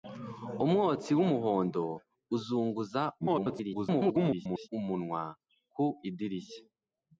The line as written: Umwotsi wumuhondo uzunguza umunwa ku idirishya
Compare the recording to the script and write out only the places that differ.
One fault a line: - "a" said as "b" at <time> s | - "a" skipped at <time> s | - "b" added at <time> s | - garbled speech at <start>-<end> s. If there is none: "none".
- garbled speech at 3.2-4.7 s